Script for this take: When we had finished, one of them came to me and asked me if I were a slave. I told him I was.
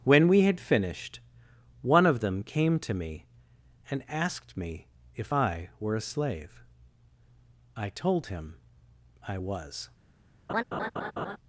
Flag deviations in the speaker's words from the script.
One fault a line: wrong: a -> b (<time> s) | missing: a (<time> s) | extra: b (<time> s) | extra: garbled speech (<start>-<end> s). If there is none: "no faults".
no faults